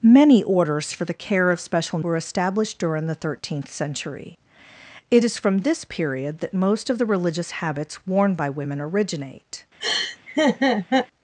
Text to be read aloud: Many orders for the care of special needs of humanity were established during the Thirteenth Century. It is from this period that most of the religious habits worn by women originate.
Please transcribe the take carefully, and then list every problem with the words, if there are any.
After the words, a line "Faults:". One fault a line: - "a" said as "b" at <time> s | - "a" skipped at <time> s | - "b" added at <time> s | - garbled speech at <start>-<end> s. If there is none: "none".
Many orders for the care of special were established during the Thirteenth Century. It is from this period that most of the religious habits worn by women originate.
Faults:
- "needs of humanity" skipped at 2.0 s